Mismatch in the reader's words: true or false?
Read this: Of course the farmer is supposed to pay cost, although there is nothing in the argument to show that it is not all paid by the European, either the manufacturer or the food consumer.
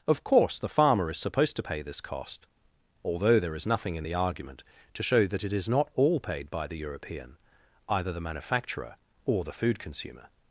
true